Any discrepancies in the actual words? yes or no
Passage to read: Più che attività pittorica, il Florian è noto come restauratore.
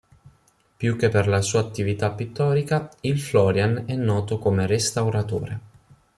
yes